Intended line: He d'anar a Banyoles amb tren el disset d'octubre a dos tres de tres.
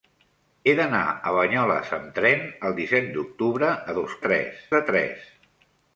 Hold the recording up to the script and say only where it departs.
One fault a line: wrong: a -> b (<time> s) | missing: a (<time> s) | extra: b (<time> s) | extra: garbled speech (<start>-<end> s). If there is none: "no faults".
no faults